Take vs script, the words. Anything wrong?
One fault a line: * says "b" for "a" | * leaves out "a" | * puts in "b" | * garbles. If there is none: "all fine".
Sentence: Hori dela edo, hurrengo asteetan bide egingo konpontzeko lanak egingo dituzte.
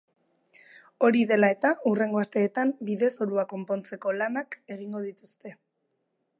* says "eta" for "edo"
* says "zorua" for "egingo"